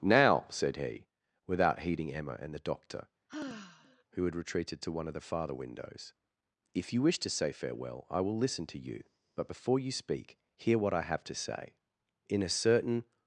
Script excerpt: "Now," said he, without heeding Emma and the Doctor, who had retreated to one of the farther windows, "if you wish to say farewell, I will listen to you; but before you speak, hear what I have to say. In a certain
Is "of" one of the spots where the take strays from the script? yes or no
no